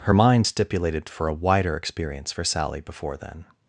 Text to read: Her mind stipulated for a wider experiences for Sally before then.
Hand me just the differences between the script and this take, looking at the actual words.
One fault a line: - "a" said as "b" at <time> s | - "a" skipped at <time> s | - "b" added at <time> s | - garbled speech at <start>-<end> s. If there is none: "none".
- "experiences" said as "experience" at 1.8 s